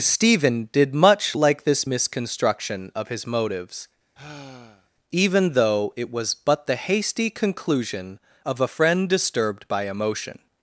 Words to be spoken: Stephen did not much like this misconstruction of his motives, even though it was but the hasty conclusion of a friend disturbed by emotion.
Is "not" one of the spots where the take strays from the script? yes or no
yes